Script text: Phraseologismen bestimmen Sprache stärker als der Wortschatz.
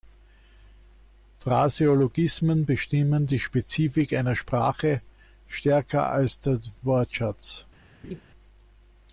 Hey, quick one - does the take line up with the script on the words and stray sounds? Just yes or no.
no